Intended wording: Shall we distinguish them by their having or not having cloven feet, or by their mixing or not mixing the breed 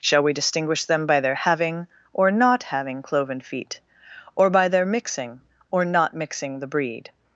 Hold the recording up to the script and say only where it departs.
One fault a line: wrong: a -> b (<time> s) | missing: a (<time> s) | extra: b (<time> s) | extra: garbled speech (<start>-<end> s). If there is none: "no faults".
no faults